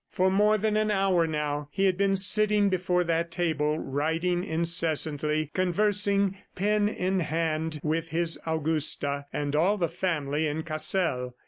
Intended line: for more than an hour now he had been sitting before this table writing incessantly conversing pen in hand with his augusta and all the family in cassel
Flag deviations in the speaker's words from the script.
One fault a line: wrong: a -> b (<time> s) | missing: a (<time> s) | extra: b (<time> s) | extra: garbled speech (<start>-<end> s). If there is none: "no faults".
wrong: this -> that (3.0 s)